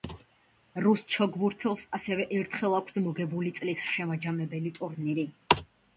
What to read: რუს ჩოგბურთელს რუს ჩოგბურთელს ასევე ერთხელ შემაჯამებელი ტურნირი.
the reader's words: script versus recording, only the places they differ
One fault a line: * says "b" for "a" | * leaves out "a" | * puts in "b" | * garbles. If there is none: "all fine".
* says "ასევე ერთხელ აქვს მოგებული წლის" for "რუს ჩოგბურთელს ასევე ერთხელ"